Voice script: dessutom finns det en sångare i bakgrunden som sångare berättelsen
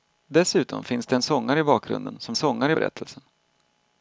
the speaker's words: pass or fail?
pass